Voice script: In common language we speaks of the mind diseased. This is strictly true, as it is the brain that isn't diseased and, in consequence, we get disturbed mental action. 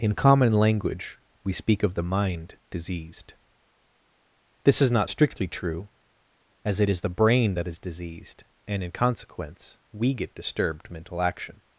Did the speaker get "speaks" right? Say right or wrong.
wrong